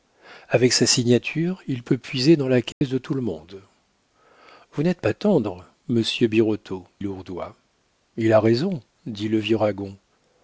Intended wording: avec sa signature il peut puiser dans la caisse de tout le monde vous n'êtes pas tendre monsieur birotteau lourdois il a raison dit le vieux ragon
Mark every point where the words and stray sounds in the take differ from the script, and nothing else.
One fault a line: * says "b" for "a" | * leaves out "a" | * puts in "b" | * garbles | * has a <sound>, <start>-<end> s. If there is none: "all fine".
* has a dropout, 2.7-2.8 s